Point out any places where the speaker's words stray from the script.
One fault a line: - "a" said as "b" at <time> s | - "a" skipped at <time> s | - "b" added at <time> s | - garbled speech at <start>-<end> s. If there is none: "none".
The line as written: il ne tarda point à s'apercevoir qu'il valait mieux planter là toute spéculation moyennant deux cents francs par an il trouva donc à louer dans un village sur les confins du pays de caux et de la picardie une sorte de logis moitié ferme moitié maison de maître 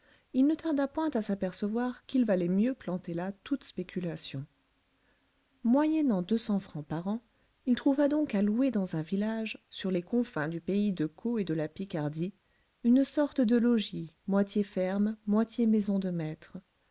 none